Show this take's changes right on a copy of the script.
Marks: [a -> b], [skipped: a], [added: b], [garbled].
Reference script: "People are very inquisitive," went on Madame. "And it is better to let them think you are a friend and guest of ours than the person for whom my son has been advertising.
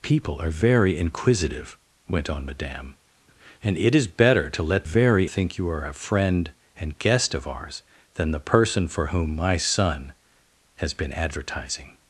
"People are very inquisitive," went on Madame. "And it is better to let [them -> very] think you are a friend and guest of ours than the person for whom my son has been advertising.